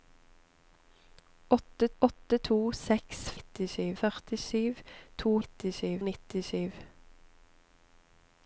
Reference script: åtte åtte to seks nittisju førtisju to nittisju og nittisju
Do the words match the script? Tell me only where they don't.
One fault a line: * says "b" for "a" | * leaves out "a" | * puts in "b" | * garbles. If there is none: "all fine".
all fine